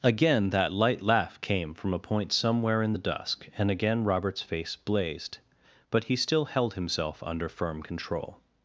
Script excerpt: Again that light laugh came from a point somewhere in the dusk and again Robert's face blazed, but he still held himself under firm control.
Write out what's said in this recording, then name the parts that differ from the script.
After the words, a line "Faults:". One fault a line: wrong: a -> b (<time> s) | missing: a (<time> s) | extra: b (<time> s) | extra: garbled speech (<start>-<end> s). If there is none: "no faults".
Again that light laugh came from a point somewhere in the dusk and again Robert's face blazed, but he still held himself under firm control.
Faults:
no faults